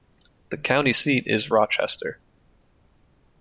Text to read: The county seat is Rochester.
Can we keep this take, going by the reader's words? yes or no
yes